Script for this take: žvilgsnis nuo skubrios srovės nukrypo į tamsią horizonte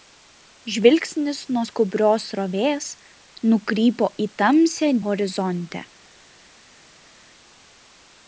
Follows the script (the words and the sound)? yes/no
yes